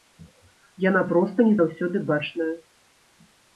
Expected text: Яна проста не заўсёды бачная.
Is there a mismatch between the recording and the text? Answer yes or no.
no